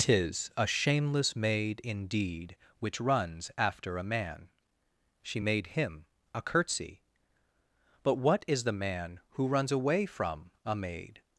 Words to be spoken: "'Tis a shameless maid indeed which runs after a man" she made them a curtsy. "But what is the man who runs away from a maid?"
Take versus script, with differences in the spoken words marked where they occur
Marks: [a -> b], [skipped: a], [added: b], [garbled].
"'Tis a shameless maid indeed which runs after a man" she made [them -> him] a curtsy. "But what is the man who runs away from a maid?"